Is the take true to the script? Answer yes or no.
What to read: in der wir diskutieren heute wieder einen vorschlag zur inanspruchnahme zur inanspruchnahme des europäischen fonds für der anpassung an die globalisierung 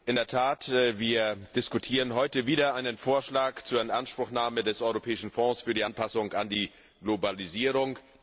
no